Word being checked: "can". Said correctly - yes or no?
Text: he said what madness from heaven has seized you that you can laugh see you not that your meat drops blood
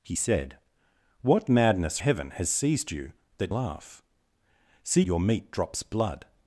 no